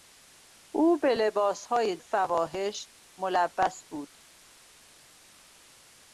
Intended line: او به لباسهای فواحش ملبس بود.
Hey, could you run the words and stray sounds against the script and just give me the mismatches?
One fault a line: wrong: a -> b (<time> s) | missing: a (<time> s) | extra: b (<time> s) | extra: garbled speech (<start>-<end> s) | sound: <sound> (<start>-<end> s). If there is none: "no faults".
no faults